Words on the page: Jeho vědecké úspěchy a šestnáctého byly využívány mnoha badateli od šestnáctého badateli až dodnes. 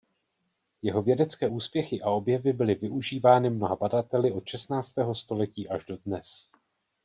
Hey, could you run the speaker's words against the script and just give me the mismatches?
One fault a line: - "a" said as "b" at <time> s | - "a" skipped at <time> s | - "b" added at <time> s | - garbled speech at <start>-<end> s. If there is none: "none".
- "šestnáctého" said as "objevy" at 2.1 s
- "badateli" said as "století" at 5.1 s